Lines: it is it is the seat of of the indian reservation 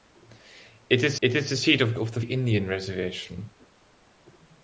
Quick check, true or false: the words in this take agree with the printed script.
true